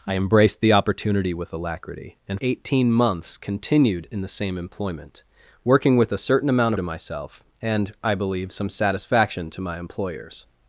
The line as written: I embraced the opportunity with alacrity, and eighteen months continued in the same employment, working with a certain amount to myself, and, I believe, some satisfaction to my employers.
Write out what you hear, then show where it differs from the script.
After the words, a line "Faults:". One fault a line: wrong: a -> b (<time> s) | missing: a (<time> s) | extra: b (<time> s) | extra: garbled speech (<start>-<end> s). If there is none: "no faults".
I embraced the opportunity with alacrity, and eighteen months continued in the same employment, working with a certain amount to myself, and, I believe, some satisfaction to my employers.
Faults:
no faults